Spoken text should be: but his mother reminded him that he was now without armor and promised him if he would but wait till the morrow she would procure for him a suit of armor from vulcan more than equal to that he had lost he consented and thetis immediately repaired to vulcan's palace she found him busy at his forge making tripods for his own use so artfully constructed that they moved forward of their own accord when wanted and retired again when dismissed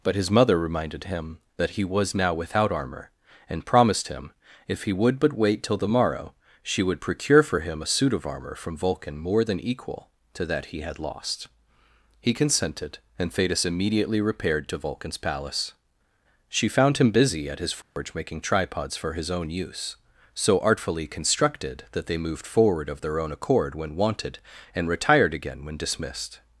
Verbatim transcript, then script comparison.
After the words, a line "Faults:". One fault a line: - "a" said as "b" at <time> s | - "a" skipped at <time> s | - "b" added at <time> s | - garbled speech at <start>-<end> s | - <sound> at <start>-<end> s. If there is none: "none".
but his mother reminded him that he was now without armor and promised him if he would but wait till the morrow she would procure for him a suit of armor from vulcan more than equal to that he had lost he consented and thetis immediately repaired to vulcan's palace she found him busy at his forge making tripods for his own use so artfully constructed that they moved forward of their own accord when wanted and retired again when dismissed
Faults:
- dropout at 17.8-18.0 s